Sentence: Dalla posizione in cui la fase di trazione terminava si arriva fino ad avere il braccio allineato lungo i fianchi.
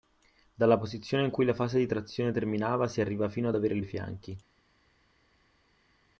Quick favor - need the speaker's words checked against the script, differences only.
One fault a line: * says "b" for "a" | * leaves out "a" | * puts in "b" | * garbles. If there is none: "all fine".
* leaves out "braccio allineato lungo"